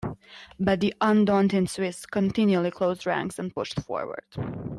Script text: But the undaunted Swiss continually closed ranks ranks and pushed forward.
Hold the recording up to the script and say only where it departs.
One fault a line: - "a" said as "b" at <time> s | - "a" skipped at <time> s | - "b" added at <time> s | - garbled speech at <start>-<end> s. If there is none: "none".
- "ranks" skipped at 3.4 s